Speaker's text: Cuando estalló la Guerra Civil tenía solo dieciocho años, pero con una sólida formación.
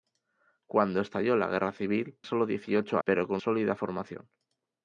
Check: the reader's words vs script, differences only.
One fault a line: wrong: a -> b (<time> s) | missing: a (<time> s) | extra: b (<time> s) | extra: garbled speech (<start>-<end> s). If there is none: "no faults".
missing: tenía (2.2 s)
missing: años (3.0 s)
missing: una (3.4 s)